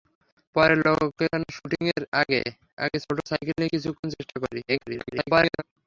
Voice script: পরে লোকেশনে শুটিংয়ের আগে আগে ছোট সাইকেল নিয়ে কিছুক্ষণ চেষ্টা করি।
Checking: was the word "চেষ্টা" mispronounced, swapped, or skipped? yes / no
no